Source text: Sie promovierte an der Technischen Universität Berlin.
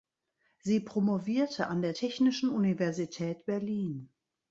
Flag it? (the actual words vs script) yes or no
no